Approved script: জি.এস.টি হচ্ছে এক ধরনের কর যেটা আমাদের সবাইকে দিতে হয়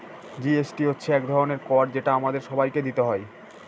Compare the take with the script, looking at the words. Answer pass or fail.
pass